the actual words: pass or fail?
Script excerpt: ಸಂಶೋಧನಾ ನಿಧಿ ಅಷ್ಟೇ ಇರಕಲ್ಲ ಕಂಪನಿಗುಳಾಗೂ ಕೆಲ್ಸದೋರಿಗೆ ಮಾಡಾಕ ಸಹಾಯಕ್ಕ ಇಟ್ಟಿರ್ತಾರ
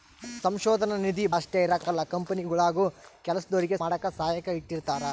pass